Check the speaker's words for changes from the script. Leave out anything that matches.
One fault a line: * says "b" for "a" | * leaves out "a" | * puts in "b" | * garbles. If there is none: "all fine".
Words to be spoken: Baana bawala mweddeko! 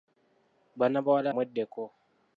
all fine